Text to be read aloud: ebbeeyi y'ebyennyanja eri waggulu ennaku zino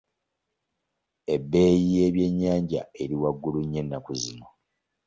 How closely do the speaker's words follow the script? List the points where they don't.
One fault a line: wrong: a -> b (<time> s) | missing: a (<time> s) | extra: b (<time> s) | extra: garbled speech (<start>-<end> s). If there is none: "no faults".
extra: nnyo (3.6 s)